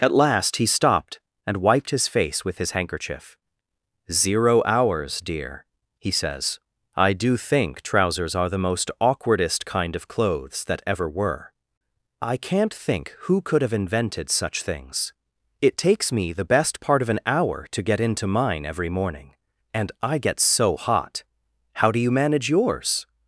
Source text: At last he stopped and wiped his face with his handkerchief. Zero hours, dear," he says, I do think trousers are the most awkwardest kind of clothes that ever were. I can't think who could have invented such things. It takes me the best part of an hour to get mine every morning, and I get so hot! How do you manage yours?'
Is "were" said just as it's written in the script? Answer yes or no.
yes